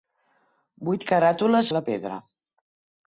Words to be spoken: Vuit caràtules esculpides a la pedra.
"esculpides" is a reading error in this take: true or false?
true